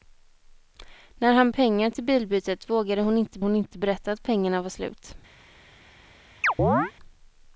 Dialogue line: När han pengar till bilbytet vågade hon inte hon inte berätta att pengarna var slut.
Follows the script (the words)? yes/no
yes